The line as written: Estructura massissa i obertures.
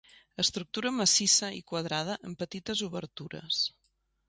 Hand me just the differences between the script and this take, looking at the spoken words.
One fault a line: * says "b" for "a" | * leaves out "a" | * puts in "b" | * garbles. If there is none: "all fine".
* puts in "quadrada amb petites"